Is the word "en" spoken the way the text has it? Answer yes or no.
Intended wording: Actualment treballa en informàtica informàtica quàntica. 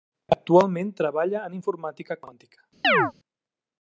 yes